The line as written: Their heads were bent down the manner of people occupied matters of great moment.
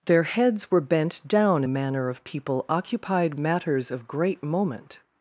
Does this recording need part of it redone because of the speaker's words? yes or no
no